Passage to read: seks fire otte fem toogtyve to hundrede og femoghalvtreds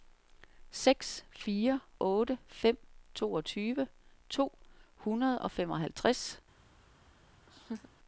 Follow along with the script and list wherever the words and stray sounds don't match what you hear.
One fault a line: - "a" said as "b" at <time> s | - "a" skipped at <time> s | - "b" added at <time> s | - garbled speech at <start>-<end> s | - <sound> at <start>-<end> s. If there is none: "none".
- laugh at 7.5-7.9 s